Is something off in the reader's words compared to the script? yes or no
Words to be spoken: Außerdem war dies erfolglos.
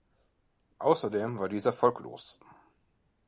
no